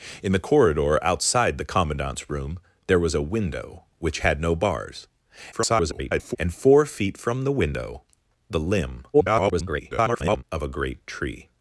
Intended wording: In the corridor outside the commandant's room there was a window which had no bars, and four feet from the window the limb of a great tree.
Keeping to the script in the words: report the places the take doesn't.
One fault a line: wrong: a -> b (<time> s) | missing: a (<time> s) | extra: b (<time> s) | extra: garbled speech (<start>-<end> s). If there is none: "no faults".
extra: garbled speech (5.5-6.4 s)
extra: garbled speech (9.1-10.4 s)